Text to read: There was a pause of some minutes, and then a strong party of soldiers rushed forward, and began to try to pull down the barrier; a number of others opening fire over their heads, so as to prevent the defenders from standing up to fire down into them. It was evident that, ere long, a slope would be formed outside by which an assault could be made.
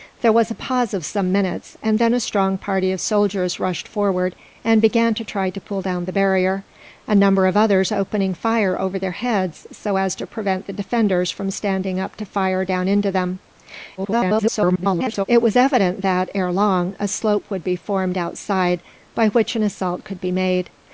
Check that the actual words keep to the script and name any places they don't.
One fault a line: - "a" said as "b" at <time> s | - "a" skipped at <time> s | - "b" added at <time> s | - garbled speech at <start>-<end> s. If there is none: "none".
- garbled speech at 14.0-15.2 s